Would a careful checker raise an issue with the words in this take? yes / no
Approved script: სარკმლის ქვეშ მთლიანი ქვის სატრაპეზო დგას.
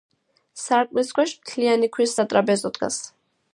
no